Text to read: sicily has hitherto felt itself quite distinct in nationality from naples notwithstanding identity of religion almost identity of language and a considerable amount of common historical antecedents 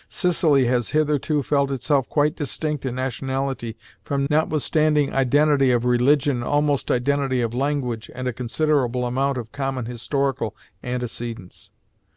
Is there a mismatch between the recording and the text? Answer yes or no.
yes